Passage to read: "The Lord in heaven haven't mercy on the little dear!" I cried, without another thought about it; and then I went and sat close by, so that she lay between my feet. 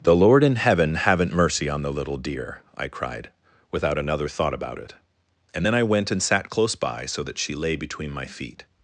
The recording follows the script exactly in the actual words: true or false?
true